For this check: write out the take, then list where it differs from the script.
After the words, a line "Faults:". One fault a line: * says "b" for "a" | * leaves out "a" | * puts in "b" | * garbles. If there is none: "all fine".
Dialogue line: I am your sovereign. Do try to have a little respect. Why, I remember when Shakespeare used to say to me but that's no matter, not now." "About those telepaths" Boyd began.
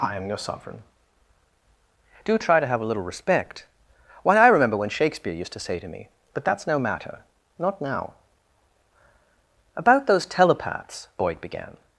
I am your sovereign. Do try to have a little respect. Why, I remember when Shakespeare used to say to me but that's no matter, not now." "About those telepaths" Boyd began.
Faults:
all fine